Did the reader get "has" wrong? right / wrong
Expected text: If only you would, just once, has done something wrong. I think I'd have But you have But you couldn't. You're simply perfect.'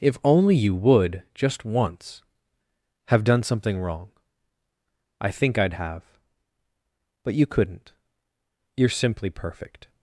wrong